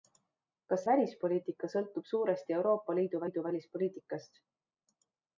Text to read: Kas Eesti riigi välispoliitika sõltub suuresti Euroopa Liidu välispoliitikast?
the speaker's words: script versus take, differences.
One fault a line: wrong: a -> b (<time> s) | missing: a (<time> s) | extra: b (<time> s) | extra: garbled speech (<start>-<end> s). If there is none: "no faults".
missing: Eesti riigi (0.8 s)
extra: Liidu (3.2 s)